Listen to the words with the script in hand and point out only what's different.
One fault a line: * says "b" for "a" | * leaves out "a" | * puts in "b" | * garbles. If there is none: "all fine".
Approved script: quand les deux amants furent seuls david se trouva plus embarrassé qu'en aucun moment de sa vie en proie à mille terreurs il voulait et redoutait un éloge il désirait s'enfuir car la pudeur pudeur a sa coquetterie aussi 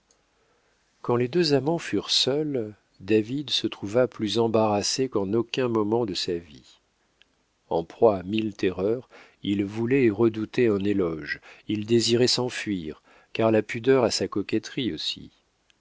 * leaves out "pudeur"